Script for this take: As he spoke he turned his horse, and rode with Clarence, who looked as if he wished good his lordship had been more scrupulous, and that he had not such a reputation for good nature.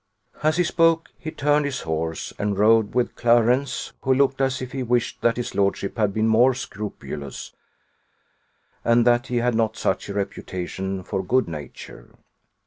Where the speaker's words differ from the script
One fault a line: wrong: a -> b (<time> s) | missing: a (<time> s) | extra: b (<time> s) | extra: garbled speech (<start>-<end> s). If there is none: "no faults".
wrong: good -> that (5.2 s)